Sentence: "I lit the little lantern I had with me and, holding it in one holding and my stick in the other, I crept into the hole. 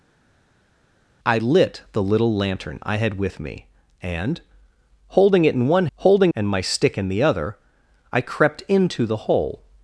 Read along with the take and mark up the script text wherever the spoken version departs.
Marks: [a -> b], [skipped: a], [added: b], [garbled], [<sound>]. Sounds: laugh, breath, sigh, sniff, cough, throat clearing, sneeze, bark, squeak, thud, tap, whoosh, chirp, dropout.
"I lit the little lantern I had with me and, holding it in one holding and my stick in the other, I crept into the hole.